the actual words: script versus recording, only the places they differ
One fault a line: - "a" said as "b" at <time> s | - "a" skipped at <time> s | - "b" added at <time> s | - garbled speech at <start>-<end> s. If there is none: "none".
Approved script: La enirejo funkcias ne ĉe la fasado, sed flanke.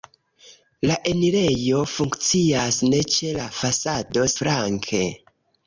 - "sed" skipped at 4.3 s